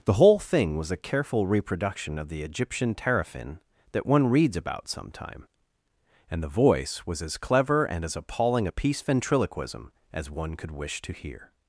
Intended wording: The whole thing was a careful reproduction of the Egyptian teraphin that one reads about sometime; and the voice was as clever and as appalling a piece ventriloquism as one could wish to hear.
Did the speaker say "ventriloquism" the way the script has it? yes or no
yes